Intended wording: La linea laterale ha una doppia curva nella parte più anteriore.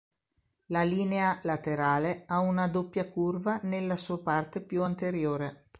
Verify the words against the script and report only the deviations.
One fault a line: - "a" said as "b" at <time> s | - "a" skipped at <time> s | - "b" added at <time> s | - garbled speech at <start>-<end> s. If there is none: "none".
- "sua" added at 4.0 s